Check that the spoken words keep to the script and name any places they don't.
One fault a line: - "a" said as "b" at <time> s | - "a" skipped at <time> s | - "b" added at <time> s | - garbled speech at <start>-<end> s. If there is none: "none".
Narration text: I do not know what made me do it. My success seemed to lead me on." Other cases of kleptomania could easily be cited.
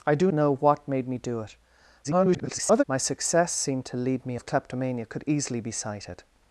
- "not" skipped at 0.3 s
- garbled speech at 2.0-2.8 s
- "on Other cases" skipped at 4.4 s